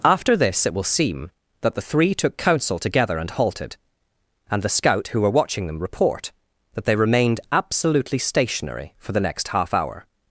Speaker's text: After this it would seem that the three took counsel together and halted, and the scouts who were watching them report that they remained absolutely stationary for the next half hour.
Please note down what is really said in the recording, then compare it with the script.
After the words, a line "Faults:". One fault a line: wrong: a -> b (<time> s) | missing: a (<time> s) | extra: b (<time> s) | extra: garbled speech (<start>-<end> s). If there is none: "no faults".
After this it will seem that the three took counsel together and halted, and the scout who were watching them report that they remained absolutely stationary for the next half hour.
Faults:
wrong: would -> will (0.7 s)
wrong: scouts -> scout (4.7 s)